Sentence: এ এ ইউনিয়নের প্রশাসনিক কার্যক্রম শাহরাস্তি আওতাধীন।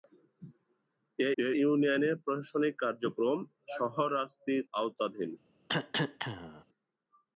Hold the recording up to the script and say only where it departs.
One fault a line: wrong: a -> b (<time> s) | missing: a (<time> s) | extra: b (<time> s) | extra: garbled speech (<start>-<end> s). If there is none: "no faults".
no faults